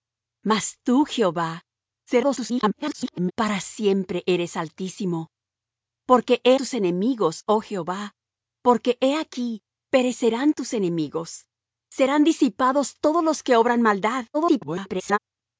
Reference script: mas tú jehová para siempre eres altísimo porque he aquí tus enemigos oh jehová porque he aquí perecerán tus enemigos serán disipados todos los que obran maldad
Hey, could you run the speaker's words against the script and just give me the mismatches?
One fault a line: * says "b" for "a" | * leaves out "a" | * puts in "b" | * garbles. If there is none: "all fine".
* garbles
* leaves out "aquí"
* garbles